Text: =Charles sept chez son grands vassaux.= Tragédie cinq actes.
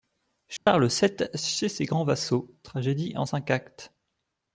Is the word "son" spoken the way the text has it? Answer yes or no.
no